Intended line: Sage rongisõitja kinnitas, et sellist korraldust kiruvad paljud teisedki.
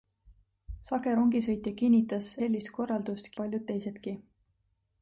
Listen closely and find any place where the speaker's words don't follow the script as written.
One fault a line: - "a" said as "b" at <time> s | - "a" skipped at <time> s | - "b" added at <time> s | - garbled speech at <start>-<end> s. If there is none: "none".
- "et" skipped at 2.3 s
- "kiruvad" skipped at 3.3 s